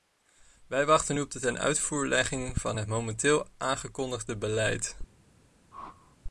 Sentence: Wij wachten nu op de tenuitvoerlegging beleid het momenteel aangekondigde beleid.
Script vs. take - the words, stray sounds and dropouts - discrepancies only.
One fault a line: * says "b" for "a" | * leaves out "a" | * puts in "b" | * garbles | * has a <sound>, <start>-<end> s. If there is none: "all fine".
* says "van" for "beleid"
* has a whoosh, 5.7-6.2 s